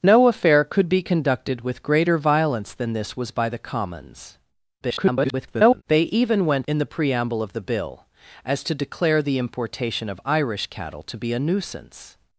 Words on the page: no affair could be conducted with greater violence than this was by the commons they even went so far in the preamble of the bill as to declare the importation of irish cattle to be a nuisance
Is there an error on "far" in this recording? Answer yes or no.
yes